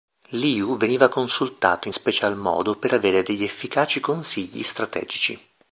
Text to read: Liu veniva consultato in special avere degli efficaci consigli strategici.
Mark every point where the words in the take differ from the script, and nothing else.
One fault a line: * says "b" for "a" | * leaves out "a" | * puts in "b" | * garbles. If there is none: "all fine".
* puts in "modo per"